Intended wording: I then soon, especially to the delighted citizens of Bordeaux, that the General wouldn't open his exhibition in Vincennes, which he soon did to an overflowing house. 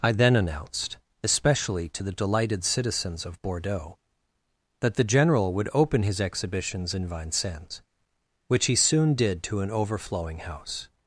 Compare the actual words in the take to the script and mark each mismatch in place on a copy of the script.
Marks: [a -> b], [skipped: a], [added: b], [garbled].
I then [soon, -> announced] especially to the delighted citizens of Bordeaux, that the General [wouldn't -> would] open his [exhibition -> exhibitions] in Vincennes, which he soon did to an overflowing house.